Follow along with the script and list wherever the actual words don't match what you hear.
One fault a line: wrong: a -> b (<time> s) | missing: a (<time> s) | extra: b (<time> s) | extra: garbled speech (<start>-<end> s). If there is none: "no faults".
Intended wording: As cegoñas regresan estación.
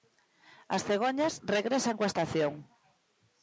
extra: coa (2.0 s)